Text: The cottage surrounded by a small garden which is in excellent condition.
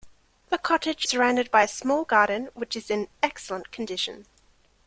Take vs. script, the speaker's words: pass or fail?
pass